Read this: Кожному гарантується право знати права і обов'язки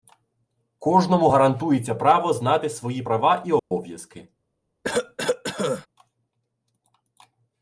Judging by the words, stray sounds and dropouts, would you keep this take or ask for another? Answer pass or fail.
fail